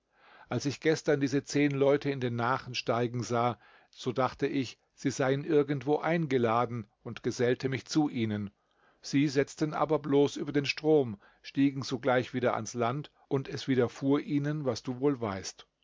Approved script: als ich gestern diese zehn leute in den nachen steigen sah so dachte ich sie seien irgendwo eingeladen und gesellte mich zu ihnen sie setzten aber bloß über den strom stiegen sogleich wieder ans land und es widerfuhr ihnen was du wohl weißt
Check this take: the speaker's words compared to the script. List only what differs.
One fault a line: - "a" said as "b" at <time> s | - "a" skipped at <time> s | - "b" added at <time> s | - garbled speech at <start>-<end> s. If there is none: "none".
none